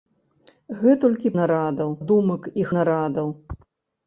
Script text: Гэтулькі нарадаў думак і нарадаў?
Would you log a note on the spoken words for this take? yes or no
no